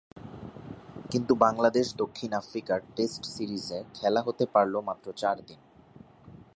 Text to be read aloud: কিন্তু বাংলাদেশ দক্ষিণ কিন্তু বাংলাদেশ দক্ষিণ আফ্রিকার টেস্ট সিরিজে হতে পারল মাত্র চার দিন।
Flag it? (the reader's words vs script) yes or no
yes